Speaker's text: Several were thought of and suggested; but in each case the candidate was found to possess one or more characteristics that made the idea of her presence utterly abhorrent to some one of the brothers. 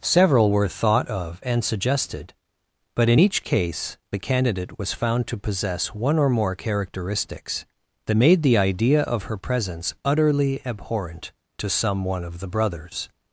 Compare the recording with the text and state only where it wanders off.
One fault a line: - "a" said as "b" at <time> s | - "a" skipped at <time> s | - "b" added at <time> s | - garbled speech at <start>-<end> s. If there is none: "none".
none